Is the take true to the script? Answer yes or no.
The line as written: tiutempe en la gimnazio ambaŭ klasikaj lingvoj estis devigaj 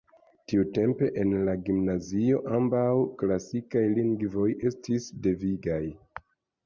yes